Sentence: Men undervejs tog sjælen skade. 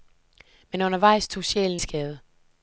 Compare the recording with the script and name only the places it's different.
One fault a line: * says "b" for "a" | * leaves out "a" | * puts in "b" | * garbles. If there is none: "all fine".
all fine